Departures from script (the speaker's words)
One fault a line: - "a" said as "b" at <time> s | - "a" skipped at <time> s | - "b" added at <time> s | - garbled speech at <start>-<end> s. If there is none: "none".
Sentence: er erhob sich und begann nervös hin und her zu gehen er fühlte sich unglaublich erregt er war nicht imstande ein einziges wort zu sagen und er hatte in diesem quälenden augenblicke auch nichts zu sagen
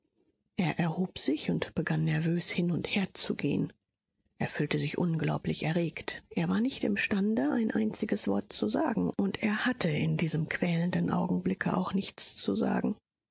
none